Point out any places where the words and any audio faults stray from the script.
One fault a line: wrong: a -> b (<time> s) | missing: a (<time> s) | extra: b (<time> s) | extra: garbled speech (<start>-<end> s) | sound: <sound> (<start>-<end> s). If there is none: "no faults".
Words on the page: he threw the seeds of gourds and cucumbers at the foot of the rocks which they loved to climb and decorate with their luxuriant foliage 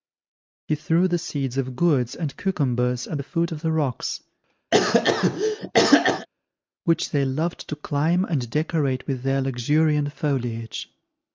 sound: cough (4.7-6.3 s)